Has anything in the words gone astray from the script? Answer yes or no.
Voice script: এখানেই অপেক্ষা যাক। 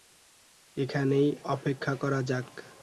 yes